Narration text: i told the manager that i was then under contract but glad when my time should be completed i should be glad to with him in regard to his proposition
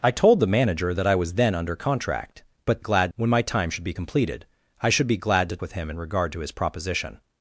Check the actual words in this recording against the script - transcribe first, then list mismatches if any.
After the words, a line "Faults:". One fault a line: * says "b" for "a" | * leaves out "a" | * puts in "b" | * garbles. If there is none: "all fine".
i told the manager that i was then under contract but glad when my time should be completed i should be glad to with him in regard to his proposition
Faults:
all fine